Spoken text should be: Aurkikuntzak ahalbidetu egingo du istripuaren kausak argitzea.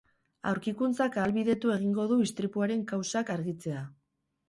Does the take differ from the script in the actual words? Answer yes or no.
no